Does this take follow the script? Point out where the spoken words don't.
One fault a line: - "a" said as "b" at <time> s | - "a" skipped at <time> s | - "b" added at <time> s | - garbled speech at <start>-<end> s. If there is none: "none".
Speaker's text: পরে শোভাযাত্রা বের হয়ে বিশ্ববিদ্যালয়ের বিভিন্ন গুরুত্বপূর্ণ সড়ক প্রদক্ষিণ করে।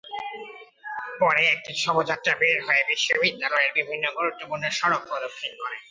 - "একটি" added at 1.5 s